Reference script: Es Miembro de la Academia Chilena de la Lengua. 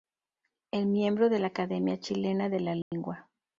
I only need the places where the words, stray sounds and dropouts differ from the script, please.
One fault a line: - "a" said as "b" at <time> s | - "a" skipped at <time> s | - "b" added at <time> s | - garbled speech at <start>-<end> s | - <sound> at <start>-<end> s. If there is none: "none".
- dropout at 2.8-2.9 s